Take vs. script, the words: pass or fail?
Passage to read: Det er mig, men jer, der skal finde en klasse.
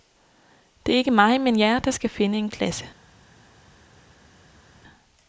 fail